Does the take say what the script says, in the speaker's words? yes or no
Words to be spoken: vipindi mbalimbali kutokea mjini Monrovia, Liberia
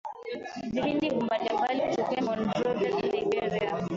no